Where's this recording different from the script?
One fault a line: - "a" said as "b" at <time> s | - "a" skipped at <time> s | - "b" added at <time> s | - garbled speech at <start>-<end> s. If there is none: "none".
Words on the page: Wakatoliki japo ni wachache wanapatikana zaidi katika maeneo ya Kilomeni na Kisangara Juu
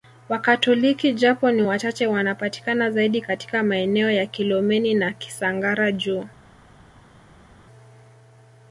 none